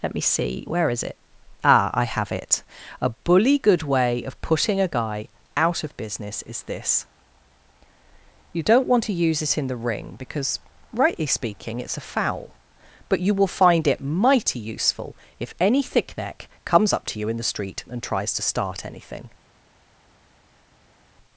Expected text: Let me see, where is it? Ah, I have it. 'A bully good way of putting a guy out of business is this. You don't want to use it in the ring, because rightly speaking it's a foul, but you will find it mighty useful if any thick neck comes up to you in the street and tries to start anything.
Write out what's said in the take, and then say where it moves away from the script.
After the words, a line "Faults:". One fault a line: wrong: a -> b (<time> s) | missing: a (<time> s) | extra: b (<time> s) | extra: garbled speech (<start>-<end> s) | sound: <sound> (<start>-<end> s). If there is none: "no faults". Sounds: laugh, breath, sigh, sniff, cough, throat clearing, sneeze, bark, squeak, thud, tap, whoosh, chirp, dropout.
Let me see, where is it? Ah, I have it. 'A bully good way of putting a guy out of business is this. You don't want to use it in the ring, because rightly speaking it's a foul, but you will find it mighty useful if any thick neck comes up to you in the street and tries to start anything.
Faults:
no faults